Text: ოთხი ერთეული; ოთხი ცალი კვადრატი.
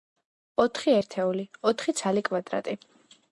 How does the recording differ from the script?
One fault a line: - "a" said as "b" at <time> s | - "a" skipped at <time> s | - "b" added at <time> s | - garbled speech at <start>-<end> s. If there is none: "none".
none